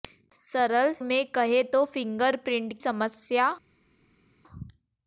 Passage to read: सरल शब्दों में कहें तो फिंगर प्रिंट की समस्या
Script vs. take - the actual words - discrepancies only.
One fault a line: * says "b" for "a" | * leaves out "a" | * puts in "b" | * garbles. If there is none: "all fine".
* leaves out "शब्दों"
* leaves out "की"